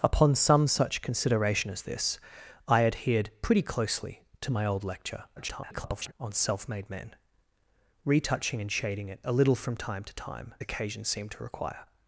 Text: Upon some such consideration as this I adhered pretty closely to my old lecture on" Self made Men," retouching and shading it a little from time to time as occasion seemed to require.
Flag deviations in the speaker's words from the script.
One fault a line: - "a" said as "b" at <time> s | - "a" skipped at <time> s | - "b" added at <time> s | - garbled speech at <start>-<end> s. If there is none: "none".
- garbled speech at 5.4-6.1 s
- "as" skipped at 10.5 s